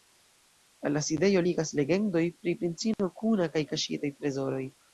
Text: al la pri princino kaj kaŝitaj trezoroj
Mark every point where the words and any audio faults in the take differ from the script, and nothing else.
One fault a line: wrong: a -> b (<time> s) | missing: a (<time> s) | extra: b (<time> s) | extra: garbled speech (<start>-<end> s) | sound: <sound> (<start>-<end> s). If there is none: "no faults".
extra: sidejo ligas legendoj (1.1 s)
extra: kuna (3.2 s)